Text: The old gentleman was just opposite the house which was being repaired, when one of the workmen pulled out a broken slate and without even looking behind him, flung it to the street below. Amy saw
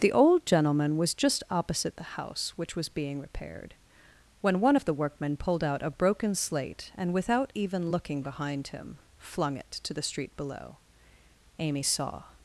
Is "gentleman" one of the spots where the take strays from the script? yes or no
no